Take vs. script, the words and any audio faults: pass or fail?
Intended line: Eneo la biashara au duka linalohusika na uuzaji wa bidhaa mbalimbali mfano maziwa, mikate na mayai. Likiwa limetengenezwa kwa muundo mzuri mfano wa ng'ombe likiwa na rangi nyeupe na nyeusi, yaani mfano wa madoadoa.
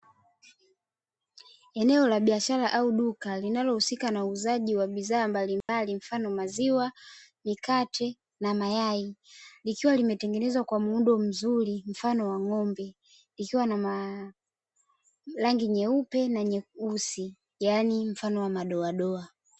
fail